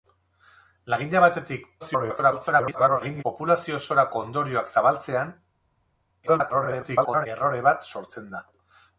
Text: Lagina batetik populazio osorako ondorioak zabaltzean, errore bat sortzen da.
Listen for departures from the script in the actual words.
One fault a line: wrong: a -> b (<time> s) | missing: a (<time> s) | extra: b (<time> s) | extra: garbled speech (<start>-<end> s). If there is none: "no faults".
extra: garbled speech (1.8-3.2 s)
extra: garbled speech (6.3-7.3 s)